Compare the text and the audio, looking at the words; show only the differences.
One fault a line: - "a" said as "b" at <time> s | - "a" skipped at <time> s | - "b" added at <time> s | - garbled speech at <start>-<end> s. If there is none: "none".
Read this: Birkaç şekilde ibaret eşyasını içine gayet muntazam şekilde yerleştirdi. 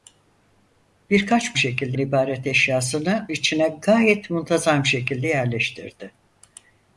none